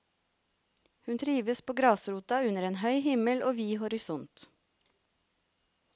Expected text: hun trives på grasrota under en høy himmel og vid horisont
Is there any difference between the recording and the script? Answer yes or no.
no